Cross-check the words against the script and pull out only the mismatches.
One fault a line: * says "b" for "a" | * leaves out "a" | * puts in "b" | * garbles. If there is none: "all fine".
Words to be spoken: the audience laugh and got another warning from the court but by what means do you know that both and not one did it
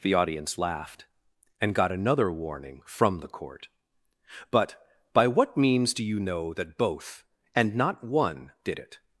* says "laughed" for "laugh"